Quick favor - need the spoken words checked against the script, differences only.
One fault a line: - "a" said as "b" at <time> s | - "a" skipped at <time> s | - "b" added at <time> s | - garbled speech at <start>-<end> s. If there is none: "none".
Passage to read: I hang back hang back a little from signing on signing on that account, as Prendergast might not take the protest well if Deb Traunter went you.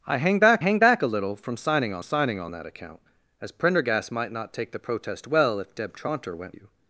none